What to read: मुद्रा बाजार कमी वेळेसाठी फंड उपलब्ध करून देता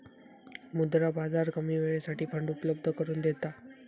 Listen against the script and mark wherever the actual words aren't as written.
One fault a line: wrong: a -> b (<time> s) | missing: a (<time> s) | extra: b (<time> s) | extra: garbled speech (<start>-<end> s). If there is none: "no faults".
no faults